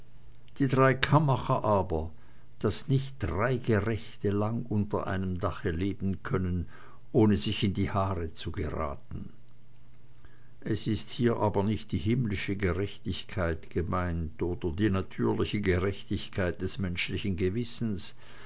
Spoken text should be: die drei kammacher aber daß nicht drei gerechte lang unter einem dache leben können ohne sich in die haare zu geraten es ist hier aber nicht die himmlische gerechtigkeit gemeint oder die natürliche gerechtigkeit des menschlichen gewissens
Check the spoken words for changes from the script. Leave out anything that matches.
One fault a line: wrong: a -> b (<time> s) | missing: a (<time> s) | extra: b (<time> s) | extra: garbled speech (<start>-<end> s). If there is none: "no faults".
no faults